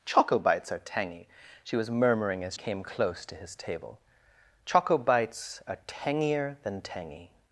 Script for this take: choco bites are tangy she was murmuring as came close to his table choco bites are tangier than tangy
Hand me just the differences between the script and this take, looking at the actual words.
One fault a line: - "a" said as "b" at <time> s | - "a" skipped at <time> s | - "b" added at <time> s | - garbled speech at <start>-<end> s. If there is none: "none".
none